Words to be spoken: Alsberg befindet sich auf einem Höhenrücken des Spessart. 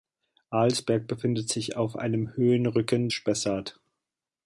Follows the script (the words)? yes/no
no